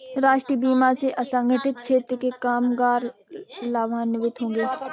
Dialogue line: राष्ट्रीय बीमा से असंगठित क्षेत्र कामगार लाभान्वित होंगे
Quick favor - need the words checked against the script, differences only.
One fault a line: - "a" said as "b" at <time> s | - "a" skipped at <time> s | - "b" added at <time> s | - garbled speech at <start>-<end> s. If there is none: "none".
- "के" added at 2.2 s